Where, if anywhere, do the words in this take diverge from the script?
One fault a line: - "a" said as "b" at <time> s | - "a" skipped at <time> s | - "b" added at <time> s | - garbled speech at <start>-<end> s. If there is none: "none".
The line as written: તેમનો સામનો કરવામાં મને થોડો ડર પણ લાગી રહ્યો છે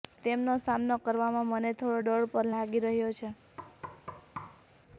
none